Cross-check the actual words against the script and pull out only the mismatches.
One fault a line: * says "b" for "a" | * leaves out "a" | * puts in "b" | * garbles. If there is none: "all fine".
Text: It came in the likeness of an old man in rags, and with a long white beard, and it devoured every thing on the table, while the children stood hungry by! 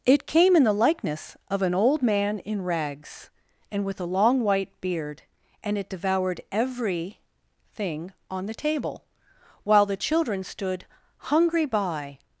all fine